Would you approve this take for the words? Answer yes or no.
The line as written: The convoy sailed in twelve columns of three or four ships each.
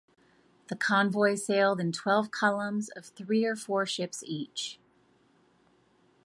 yes